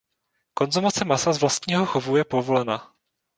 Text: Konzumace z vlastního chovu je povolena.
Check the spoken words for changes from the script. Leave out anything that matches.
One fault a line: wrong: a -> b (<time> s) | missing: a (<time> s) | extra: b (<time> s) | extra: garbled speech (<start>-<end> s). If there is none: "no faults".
extra: masa (1.1 s)